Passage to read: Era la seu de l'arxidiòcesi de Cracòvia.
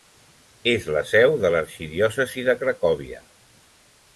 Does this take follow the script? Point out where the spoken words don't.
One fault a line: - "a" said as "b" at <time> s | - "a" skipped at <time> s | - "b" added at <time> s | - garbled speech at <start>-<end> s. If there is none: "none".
- "Era" said as "És" at 0.7 s